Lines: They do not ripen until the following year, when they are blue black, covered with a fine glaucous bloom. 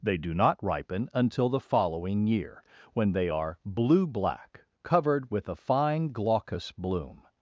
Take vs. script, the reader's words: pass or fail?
pass